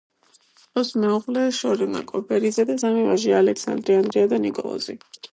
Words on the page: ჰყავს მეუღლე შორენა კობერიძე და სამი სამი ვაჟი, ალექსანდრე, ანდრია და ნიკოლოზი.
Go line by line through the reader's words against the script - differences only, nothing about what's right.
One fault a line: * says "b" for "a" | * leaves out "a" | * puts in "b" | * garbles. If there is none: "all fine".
* leaves out "სამი"